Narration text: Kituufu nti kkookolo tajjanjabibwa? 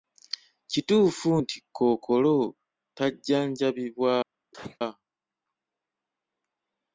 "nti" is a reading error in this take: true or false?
false